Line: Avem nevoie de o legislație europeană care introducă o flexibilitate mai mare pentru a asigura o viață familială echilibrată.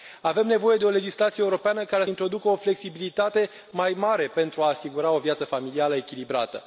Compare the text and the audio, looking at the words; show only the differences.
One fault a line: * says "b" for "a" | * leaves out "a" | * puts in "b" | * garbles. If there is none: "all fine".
all fine